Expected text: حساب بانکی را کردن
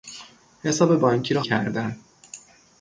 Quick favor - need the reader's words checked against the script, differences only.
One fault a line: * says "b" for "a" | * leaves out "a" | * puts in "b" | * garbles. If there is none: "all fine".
all fine